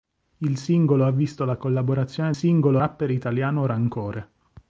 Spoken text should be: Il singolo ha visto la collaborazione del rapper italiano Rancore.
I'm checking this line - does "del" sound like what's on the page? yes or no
no